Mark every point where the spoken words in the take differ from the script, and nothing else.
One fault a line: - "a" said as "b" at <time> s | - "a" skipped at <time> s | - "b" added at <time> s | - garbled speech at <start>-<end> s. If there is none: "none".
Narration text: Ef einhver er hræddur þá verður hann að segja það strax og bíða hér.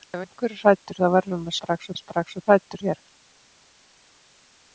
- "segja" said as "strax" at 1.6 s
- "bíða" said as "hræddur" at 2.4 s